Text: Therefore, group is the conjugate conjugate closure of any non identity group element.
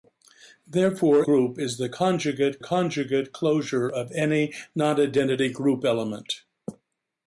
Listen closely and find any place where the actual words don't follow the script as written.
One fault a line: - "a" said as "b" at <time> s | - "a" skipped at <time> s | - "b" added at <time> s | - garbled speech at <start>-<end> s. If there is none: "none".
none